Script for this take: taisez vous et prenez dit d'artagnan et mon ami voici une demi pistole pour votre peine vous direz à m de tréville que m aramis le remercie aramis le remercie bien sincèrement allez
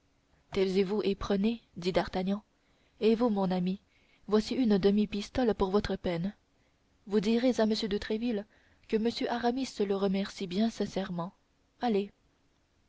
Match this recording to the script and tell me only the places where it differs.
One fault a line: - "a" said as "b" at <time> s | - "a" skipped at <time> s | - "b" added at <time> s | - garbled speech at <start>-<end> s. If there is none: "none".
- "vous" added at 3.1 s
- "aramis le remercie" skipped at 10.5 s